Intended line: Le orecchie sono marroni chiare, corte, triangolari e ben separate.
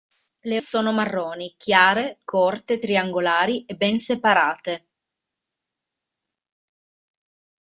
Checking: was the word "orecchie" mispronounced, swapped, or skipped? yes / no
yes